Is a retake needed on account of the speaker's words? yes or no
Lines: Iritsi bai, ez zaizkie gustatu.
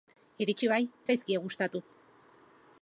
no